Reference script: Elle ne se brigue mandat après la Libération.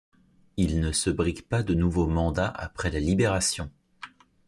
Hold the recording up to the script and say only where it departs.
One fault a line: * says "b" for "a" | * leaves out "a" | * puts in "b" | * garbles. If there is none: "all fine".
* says "Il" for "Elle"
* puts in "pas de nouveau"